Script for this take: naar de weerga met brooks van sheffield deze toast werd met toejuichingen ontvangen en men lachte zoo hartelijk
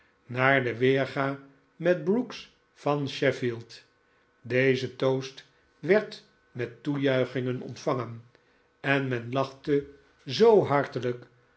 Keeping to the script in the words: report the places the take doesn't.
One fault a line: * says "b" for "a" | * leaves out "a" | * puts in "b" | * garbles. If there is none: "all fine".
all fine